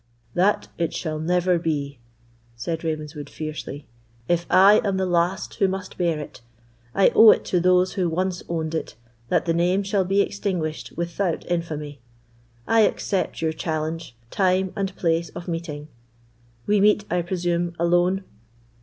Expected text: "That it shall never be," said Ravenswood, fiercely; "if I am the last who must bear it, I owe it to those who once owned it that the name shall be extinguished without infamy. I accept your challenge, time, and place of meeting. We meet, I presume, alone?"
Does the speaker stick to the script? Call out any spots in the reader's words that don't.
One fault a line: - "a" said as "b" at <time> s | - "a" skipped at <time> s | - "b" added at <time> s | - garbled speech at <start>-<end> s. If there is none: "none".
none